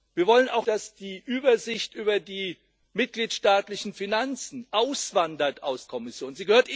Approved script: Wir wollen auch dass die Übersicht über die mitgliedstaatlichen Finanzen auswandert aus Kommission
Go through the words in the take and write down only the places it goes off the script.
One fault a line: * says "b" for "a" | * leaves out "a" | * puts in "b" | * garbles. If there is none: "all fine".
all fine